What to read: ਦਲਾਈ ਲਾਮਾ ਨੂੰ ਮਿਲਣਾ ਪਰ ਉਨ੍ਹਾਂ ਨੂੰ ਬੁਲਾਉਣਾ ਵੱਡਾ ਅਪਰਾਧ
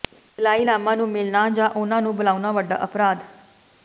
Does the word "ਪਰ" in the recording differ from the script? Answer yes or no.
yes